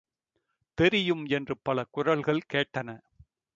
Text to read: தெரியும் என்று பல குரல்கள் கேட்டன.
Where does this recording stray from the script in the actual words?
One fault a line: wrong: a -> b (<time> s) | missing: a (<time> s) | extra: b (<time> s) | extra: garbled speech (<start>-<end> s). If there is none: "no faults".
no faults